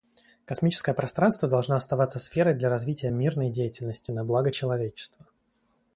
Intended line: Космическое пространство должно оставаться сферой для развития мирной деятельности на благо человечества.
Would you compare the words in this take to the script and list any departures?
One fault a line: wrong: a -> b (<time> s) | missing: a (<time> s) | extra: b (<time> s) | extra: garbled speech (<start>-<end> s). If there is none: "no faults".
no faults